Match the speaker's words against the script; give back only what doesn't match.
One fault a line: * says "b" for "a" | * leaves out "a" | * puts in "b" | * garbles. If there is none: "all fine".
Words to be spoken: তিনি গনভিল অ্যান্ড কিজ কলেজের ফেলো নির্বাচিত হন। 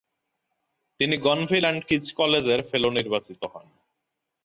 all fine